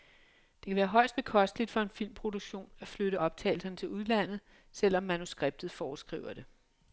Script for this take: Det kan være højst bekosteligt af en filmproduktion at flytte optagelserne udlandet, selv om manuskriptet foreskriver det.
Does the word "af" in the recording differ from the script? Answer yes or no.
yes